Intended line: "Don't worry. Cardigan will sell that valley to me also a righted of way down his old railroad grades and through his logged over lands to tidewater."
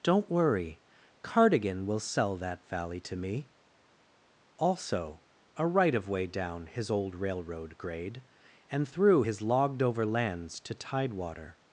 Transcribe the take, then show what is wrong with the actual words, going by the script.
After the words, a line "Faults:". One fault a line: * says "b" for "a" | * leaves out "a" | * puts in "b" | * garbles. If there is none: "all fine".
"Don't worry. Cardigan will sell that valley to me also a right of way down his old railroad grade and through his logged over lands to tidewater."
Faults:
* says "right" for "righted"
* says "grade" for "grades"